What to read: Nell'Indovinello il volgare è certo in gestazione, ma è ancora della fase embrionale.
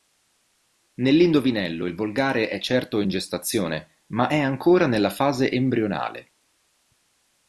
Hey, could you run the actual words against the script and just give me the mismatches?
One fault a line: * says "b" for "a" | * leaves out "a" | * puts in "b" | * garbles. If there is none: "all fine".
* says "nella" for "della"